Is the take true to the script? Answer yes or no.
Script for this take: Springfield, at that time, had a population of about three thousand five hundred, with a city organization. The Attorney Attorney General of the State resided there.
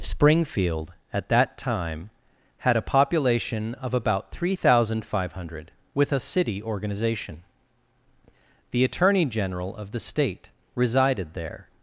no